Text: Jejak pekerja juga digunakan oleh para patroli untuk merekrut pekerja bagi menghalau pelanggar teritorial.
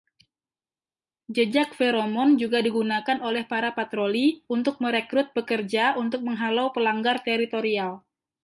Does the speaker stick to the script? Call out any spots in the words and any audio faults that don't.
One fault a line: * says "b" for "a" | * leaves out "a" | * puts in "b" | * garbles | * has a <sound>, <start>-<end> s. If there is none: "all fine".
* says "feromon" for "pekerja"
* says "untuk" for "bagi"